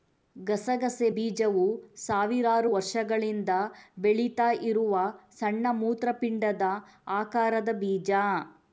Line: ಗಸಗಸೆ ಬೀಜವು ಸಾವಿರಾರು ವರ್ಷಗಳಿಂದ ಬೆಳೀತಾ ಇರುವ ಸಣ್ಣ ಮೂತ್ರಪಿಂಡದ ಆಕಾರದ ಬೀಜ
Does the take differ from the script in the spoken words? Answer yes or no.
no